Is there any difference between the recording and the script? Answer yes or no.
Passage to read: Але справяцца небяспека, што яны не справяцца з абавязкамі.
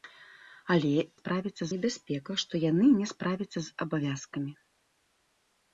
no